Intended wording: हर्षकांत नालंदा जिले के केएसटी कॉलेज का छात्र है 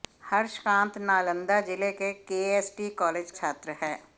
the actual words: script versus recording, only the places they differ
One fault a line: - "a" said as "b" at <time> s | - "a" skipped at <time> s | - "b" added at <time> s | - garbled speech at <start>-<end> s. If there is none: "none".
- "का" skipped at 3.3 s